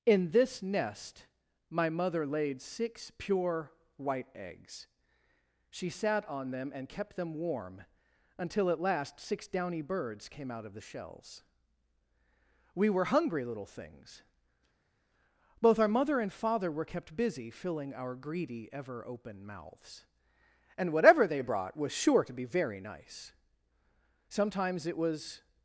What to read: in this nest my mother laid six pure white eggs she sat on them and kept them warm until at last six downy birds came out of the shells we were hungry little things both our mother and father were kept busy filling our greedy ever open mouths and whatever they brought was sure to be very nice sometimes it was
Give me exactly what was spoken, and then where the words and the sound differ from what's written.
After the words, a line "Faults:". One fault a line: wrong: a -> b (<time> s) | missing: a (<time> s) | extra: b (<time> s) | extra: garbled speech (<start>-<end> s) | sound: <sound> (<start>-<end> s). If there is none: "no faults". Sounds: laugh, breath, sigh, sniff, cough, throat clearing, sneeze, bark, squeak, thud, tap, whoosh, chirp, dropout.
in this nest my mother laid six pure white eggs she sat on them and kept them warm until at last six downy birds came out of the shells we were hungry little things both our mother and father were kept busy filling our greedy ever open mouths and whatever they brought was sure to be very nice sometimes it was
Faults:
no faults